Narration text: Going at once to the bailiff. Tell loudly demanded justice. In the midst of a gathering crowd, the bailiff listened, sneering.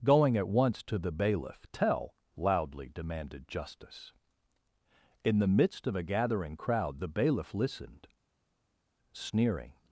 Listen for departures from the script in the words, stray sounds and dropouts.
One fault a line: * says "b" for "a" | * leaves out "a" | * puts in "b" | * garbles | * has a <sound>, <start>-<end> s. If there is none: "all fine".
all fine